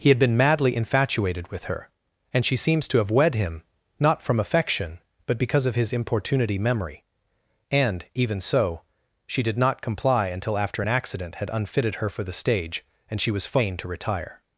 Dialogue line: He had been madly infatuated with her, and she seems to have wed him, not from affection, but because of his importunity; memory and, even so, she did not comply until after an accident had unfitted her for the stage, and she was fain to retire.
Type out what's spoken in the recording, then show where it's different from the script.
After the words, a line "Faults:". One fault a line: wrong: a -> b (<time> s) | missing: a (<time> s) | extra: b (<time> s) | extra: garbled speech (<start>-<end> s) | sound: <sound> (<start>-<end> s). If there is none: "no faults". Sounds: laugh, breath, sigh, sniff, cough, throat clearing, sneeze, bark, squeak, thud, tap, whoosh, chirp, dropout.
He had been madly infatuated with her, and she seems to have wed him, not from affection, but because of his importunity; memory and, even so, she did not comply until after an accident had unfitted her for the stage, and she was fain to retire.
Faults:
no faults